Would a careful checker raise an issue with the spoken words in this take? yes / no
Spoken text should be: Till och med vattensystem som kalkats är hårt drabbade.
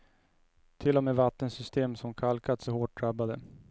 no